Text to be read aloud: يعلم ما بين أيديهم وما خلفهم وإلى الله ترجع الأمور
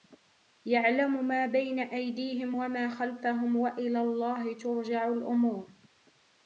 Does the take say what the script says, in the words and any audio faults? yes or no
yes